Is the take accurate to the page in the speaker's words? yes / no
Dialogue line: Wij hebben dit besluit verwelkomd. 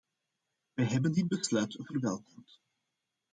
yes